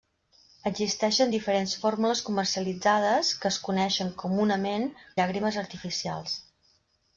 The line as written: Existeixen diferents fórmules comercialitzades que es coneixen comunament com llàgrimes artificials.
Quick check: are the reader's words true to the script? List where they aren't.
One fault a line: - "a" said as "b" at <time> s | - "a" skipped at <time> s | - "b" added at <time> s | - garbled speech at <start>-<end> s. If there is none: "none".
- "com" skipped at 4.9 s